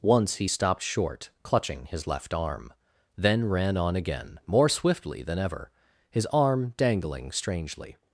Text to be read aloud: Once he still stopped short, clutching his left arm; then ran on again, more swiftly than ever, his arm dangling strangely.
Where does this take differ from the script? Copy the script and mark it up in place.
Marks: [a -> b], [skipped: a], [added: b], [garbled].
Once he [skipped: still] stopped short, clutching his left arm; then ran on again, more swiftly than ever, his arm dangling strangely.